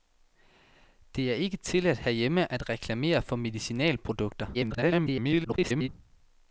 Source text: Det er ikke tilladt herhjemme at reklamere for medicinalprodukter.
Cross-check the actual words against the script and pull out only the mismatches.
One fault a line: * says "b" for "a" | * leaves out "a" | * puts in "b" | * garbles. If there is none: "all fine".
* garbles